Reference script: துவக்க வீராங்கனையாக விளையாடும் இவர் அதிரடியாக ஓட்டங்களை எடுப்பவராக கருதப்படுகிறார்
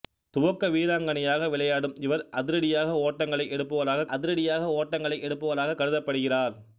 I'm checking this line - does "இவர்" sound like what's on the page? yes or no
yes